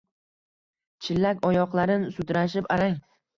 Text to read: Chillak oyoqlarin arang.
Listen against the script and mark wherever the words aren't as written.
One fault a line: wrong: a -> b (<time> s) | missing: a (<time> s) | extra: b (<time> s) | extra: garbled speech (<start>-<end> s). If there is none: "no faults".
extra: sudrashib (2.2 s)